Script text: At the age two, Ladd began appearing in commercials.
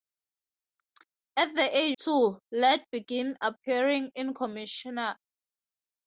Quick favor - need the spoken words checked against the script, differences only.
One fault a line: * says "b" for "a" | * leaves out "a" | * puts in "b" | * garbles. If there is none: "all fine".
all fine